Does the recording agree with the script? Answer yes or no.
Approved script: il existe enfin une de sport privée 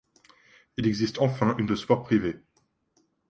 yes